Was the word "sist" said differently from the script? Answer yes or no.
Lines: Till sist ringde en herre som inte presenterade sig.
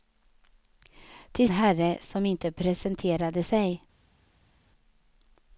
yes